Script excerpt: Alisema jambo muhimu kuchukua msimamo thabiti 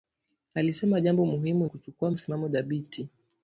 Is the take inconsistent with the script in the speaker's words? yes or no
no